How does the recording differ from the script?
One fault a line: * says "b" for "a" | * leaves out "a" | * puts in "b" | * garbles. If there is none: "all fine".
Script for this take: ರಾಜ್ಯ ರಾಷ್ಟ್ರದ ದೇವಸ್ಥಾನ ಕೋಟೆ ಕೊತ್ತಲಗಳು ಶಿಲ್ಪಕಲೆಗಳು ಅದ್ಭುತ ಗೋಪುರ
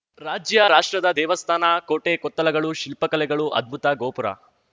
all fine